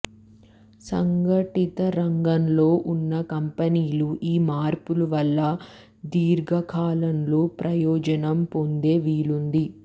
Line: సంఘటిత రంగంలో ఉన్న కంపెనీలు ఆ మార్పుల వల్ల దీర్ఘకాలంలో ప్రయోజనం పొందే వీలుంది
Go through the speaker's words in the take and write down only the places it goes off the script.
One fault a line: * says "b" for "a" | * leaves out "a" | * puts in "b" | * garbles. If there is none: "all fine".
* says "ఈ" for "ఆ"